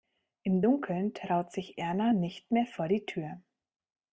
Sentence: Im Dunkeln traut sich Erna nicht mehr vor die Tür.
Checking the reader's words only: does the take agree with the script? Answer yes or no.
yes